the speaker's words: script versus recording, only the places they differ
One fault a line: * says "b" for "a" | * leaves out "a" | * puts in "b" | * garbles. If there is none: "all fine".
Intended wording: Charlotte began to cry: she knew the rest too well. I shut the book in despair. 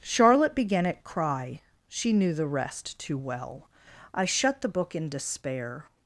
* says "at" for "to"